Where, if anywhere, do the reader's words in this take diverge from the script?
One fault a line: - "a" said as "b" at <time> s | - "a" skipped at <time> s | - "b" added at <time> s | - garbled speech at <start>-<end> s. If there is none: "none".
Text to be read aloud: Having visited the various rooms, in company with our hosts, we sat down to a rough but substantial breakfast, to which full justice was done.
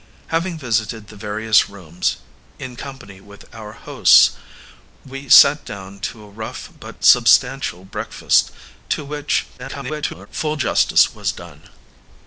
- garbled speech at 9.6-10.3 s